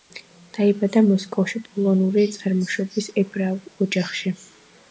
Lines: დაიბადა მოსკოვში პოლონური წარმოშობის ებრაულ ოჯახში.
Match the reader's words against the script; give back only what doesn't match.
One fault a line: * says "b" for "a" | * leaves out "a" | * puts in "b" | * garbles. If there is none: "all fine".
all fine